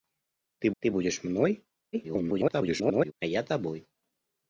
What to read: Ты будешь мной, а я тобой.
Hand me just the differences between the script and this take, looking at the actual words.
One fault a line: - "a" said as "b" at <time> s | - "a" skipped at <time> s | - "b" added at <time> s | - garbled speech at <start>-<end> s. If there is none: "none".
- "ты" added at 0.8 s
- garbled speech at 1.9-3.1 s